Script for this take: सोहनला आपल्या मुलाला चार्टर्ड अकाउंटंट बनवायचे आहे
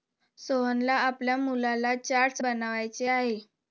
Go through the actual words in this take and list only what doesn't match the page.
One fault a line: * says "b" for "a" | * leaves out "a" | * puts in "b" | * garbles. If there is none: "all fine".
* leaves out "अकाउंटंट"